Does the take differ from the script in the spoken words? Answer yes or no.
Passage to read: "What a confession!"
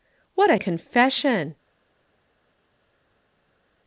no